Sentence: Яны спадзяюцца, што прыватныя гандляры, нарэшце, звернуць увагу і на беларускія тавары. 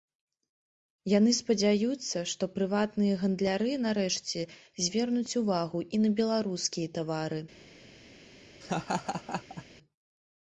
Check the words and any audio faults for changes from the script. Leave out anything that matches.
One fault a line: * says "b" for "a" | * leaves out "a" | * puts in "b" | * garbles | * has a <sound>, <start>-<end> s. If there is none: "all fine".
* has a laugh, 8.6-9.6 s